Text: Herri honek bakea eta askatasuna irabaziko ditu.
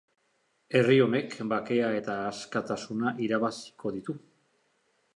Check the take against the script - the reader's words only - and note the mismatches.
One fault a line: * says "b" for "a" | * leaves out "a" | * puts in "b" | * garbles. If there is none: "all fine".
all fine